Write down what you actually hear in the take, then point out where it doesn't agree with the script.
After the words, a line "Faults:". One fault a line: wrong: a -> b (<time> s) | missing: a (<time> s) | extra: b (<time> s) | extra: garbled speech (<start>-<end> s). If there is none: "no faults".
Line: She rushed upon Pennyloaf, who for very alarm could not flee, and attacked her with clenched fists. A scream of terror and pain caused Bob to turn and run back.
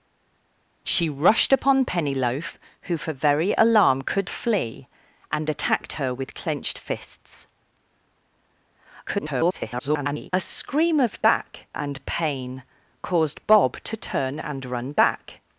She rushed upon Pennyloaf, who for very alarm could flee, and attacked her with clenched fists. [garbled] A scream of back and pain caused Bob to turn and run back.
Faults:
missing: not (4.3 s)
extra: garbled speech (9.1-10.3 s)
wrong: terror -> back (11.2 s)